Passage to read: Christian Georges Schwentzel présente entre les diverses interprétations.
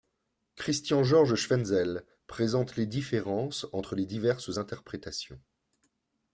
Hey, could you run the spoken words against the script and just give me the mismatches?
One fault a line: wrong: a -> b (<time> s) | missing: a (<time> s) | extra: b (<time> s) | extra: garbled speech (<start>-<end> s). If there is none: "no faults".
extra: les différences (2.8 s)